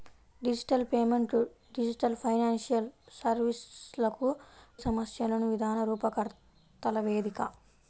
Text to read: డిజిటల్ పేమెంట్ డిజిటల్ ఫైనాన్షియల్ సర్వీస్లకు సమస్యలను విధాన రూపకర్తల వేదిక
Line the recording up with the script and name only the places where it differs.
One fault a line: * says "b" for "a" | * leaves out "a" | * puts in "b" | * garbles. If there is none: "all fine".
all fine